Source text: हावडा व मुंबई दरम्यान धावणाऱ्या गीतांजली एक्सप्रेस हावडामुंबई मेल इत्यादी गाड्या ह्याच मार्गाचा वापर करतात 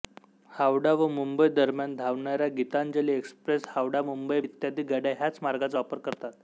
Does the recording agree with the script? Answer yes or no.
no